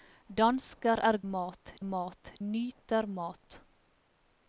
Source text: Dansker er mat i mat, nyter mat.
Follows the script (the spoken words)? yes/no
yes